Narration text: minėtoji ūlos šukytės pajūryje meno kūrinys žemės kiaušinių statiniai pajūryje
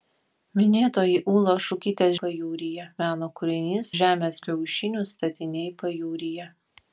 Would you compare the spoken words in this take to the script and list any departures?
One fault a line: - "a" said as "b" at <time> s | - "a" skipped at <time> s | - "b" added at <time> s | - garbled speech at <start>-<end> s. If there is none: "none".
none